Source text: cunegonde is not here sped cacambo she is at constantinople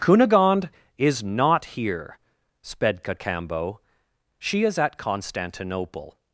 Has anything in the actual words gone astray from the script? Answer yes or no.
no